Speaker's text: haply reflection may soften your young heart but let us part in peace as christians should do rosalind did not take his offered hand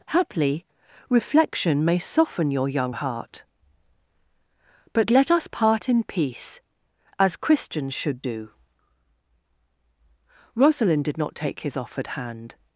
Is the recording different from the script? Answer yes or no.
no